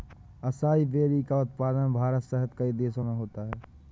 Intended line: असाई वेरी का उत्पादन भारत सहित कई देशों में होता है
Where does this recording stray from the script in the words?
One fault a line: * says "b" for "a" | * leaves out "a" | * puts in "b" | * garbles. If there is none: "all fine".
all fine